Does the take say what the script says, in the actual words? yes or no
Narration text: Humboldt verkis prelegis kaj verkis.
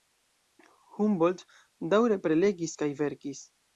no